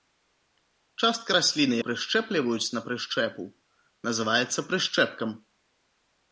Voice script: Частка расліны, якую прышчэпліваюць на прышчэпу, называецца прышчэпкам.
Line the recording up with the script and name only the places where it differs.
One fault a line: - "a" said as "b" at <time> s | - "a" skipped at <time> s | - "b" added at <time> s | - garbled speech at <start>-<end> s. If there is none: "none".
- "якую" skipped at 1.7 s